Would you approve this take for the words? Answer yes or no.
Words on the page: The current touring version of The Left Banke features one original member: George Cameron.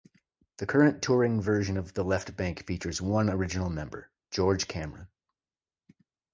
yes